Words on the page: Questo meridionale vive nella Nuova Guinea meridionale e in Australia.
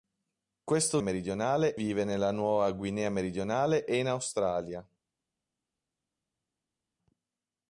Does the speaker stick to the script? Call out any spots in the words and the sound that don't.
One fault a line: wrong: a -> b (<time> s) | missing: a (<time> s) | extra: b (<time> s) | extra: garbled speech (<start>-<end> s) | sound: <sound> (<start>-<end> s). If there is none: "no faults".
no faults